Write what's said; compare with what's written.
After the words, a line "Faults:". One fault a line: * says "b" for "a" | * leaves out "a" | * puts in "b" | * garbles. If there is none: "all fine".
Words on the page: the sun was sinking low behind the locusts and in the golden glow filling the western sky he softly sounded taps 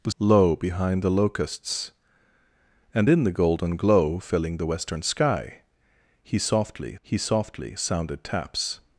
the low behind the locusts and in the golden glow filling the western sky he softly he softly sounded taps
Faults:
* leaves out "sun was sinking"
* puts in "he softly"